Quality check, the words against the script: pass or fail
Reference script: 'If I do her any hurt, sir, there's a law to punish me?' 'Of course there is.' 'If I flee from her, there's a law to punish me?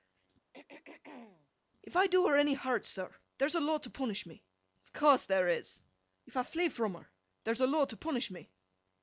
pass